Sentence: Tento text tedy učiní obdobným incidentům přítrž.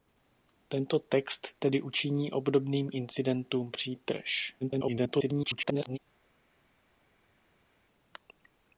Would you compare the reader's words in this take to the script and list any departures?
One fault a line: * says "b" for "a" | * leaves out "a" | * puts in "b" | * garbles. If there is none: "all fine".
* garbles